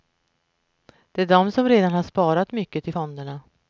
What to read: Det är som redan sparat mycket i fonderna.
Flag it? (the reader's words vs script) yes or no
yes